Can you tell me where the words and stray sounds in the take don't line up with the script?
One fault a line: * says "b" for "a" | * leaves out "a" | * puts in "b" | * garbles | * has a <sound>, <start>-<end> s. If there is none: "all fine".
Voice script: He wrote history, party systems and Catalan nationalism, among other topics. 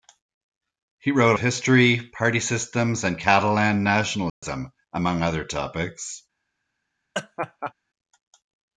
* has a dropout, 4.3-4.4 s
* has a laugh, 7.1-7.7 s